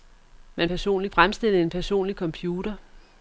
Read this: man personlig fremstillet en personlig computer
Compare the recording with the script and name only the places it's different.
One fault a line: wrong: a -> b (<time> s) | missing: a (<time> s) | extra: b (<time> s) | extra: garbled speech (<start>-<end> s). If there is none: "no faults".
no faults